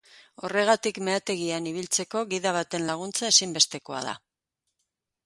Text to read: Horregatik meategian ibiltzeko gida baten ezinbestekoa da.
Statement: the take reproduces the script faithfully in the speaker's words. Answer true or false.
false